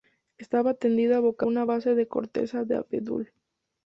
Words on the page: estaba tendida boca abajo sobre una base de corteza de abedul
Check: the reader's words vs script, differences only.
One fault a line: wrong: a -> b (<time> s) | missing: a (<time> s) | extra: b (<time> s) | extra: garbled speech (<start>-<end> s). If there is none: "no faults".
missing: abajo sobre (1.4 s)